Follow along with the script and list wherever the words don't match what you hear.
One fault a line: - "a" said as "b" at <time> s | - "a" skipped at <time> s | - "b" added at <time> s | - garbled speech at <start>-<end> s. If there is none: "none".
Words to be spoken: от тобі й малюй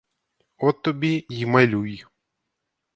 none